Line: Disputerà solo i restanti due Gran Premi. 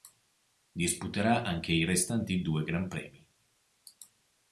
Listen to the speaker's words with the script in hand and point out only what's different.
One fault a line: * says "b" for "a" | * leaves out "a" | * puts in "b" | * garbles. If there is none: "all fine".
* says "anche" for "solo"